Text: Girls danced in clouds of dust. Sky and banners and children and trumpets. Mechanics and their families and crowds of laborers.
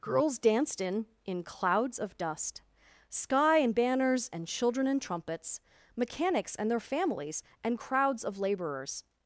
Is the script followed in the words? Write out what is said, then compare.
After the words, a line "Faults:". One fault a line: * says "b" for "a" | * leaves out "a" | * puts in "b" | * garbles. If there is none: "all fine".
Girls danced in in clouds of dust. Sky and banners and children and trumpets. Mechanics and their families and crowds of laborers.
Faults:
* puts in "in"